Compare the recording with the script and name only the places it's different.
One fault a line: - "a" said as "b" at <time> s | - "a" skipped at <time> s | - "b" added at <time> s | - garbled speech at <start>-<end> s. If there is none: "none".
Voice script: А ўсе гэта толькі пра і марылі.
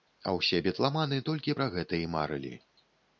- "гэта" said as "бітламаны" at 0.7 s
- "гэта" added at 1.8 s